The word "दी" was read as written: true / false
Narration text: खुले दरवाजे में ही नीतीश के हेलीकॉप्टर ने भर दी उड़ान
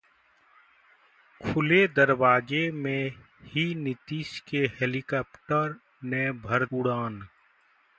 false